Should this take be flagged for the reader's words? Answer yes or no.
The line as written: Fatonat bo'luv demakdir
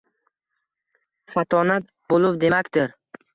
no